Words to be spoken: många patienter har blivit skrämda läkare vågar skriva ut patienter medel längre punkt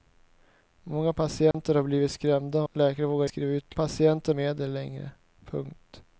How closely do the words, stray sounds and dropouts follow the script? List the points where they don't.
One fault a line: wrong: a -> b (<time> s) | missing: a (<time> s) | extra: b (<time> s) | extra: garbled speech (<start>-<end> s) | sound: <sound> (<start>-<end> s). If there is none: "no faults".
sound: dropout (1.5-1.5 s)